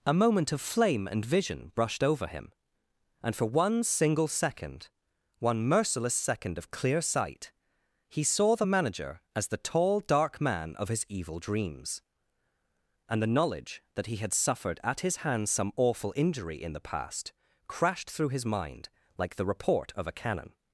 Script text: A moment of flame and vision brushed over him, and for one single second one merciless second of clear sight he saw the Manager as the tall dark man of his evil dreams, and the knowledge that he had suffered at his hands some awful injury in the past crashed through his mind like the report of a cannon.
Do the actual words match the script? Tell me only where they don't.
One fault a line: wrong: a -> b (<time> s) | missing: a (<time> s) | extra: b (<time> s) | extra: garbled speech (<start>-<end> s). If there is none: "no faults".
no faults